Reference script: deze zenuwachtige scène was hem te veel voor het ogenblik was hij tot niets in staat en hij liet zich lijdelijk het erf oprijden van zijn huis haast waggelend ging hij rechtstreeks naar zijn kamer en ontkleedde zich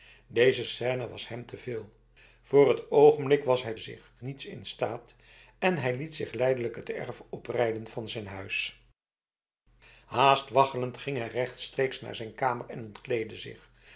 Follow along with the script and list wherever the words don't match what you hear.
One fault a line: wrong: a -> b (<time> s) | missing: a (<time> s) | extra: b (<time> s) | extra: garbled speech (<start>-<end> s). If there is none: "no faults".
missing: zenuwachtige (0.6 s)
wrong: tot -> zich (3.8 s)